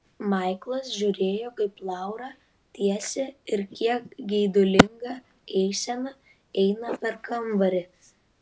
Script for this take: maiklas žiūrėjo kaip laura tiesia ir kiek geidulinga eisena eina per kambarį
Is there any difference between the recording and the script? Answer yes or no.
no